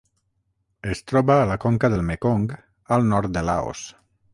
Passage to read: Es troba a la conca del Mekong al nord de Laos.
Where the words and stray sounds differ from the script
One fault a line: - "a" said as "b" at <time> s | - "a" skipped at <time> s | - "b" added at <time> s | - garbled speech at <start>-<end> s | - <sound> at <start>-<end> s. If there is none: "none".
none